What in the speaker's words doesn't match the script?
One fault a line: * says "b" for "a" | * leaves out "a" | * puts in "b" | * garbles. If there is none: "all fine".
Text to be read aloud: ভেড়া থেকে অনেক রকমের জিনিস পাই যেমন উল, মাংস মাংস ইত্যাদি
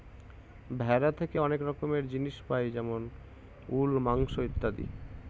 * leaves out "মাংস"